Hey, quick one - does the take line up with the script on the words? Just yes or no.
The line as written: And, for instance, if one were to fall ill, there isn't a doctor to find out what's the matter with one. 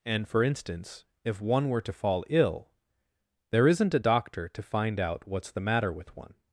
yes